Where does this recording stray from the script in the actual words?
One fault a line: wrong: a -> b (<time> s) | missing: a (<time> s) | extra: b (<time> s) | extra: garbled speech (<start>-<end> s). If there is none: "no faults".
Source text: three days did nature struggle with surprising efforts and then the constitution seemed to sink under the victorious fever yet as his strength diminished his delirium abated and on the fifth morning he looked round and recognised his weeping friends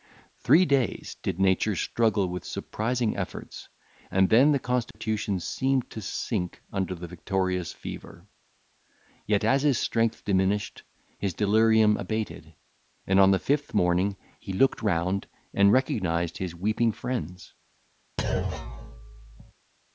no faults